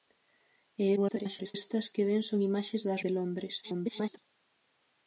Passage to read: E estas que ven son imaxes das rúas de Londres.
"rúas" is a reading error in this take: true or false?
true